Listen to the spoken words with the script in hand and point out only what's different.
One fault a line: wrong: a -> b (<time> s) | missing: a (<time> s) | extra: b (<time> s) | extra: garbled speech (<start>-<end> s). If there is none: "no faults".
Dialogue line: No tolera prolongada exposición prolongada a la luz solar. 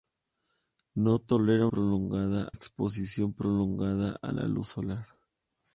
no faults